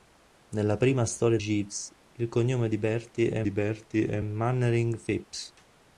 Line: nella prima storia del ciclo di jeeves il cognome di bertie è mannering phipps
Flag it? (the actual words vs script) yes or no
yes